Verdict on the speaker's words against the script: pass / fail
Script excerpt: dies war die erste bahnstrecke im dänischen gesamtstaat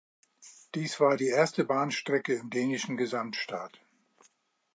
pass